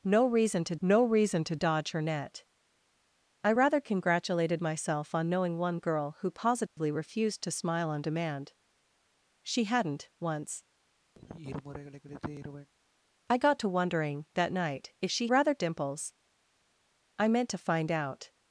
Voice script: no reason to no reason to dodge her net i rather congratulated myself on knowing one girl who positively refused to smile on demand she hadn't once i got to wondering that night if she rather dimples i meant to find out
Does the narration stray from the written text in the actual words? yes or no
no